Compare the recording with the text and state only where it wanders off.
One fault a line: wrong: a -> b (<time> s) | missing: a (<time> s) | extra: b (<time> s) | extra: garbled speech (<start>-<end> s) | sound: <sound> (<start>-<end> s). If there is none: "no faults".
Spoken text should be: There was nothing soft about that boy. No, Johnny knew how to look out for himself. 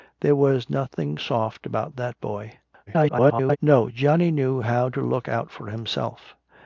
extra: garbled speech (2.9-3.6 s)